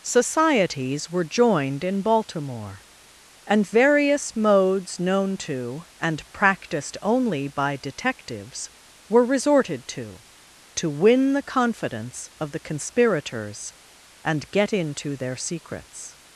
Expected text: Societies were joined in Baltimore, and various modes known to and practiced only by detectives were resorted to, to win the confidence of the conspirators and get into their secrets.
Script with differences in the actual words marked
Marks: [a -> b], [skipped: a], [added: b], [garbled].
Societies were joined in Baltimore, and various modes known to and practiced only by detectives were resorted to, to win the confidence of the conspirators and get into their secrets.